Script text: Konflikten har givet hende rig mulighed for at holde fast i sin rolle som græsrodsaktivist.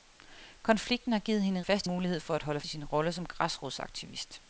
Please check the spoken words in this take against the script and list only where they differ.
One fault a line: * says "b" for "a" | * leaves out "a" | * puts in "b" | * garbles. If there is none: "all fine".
* says "fast" for "rig"
* leaves out "fast"